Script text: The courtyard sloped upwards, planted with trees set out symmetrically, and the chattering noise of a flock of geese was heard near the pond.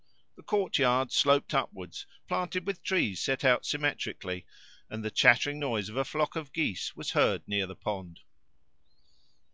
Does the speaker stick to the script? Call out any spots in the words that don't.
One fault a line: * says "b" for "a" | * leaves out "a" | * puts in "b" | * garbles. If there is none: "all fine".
all fine